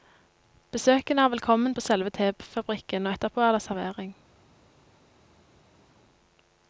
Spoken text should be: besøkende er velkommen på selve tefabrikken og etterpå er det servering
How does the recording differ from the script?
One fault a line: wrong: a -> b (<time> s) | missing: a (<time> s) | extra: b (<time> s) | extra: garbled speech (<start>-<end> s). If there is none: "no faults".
no faults